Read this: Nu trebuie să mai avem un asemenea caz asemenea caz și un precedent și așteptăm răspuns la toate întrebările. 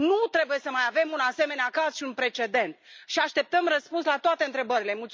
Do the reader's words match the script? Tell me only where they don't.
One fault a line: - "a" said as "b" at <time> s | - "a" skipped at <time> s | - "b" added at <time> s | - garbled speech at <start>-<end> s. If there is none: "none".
- "asemenea caz" skipped at 1.9 s